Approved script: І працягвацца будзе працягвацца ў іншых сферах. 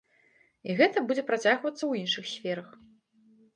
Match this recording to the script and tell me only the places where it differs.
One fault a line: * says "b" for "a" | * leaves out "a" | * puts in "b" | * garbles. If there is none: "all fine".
* says "гэта" for "працягвацца"